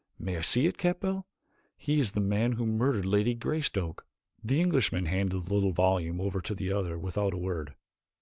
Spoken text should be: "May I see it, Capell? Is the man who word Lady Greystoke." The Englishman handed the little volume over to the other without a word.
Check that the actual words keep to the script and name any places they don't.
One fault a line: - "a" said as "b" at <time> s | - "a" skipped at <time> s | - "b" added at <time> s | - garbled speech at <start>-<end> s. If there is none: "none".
- "He" added at 1.8 s
- "word" said as "murdered" at 2.6 s